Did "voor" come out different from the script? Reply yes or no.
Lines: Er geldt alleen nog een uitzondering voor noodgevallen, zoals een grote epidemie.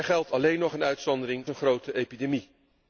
yes